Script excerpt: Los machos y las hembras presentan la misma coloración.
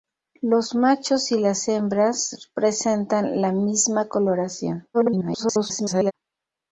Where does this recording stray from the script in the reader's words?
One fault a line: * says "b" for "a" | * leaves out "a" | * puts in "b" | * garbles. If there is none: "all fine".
* garbles